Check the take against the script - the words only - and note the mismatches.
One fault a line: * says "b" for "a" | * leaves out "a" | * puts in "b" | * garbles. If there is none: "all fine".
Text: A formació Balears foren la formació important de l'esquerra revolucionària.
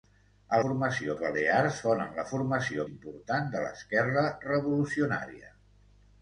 all fine